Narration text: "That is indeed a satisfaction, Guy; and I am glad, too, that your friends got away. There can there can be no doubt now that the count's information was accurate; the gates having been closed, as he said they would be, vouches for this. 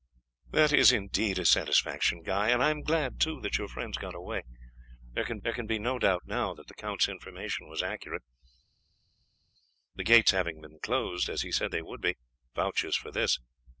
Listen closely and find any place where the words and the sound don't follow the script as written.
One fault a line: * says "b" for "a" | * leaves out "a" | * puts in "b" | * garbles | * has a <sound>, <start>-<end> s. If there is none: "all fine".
all fine